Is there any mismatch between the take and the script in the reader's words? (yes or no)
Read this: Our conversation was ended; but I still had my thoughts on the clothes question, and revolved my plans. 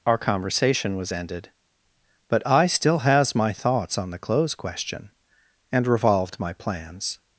yes